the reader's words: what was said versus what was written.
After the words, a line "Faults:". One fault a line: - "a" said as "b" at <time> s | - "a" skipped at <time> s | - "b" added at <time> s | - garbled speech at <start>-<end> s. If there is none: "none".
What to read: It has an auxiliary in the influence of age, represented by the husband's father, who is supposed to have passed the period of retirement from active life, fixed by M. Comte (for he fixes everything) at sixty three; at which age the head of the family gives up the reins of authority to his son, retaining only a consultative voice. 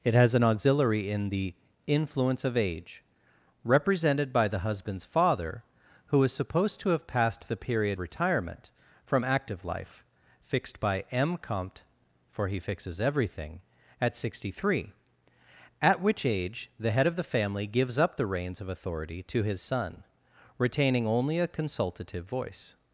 It has an auxiliary in the influence of age, represented by the husband's father, who is supposed to have passed the period retirement from active life, fixed by M. Comte (for he fixes everything) at sixty three; at which age the head of the family gives up the reins of authority to his son, retaining only a consultative voice.
Faults:
- "of" skipped at 8.0 s